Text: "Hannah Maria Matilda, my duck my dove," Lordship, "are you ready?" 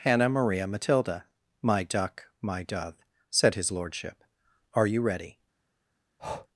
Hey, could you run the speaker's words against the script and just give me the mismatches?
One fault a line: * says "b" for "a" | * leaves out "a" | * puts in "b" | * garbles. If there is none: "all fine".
* puts in "said his"